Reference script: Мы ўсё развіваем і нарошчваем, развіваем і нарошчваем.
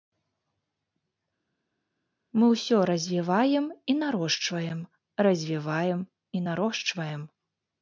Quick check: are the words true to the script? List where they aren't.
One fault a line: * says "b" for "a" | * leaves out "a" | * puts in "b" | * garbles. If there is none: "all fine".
all fine